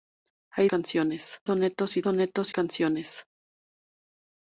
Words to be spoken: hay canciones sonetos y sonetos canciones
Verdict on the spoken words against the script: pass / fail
pass